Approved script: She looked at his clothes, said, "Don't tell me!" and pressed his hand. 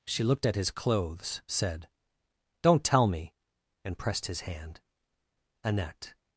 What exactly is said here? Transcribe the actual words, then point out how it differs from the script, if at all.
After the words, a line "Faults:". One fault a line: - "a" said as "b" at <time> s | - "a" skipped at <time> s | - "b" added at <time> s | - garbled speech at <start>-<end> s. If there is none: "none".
She looked at his clothes, said, "Don't tell me!" and pressed his hand. "Annette
Faults:
- "Annette" added at 5.6 s